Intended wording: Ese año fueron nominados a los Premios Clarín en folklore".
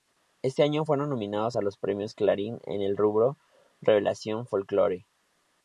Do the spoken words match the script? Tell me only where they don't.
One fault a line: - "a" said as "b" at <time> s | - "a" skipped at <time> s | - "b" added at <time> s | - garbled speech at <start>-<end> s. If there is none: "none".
- "el rubro revelación" added at 2.8 s